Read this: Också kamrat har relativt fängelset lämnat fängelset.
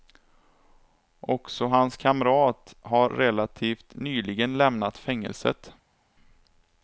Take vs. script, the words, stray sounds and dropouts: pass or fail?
fail